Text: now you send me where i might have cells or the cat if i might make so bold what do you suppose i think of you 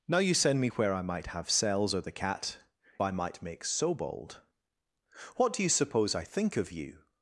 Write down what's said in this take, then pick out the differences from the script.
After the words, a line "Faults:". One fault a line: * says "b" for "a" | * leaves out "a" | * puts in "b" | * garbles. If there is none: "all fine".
now you send me where i might have cells or the cat i might make so bold what do you suppose i think of you
Faults:
* leaves out "if"